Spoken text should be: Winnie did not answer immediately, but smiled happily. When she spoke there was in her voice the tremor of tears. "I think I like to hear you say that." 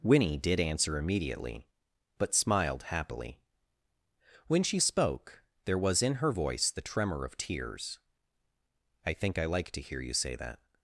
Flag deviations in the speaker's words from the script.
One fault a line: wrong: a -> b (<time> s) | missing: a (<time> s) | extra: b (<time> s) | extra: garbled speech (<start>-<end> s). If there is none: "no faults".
missing: not (0.6 s)